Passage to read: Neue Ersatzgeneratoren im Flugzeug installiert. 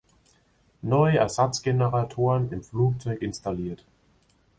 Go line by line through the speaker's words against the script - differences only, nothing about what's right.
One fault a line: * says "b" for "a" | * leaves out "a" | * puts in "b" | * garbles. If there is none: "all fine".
all fine